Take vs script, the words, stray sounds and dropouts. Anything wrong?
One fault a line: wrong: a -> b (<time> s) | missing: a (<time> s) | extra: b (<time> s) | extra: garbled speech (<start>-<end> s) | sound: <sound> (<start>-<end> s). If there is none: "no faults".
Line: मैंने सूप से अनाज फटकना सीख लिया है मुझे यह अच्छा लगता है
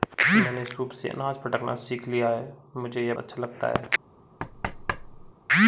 sound: thud (4.4-5.3 s)